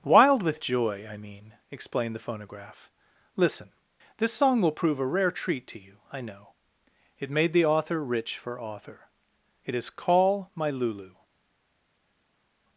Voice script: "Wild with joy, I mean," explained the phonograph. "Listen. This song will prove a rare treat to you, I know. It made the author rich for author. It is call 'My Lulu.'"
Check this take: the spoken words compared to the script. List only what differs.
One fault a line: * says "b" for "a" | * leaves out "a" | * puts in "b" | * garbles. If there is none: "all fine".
all fine